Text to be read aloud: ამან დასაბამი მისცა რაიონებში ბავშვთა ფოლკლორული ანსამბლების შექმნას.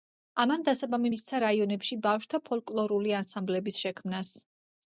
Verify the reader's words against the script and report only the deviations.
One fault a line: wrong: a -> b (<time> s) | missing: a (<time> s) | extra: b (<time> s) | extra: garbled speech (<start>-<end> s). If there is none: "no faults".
no faults